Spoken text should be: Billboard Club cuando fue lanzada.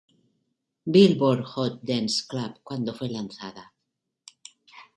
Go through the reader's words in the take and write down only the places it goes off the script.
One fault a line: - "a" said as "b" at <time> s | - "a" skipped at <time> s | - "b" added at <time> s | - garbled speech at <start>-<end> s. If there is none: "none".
- "Hot Dance" added at 1.4 s